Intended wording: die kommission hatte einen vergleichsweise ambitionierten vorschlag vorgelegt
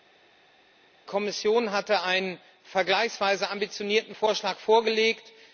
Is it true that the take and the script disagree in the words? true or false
false